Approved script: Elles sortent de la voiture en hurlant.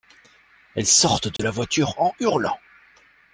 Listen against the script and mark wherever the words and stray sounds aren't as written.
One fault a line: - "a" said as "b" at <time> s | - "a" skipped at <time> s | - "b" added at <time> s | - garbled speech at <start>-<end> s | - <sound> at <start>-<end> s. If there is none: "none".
- dropout at 1.4-1.4 s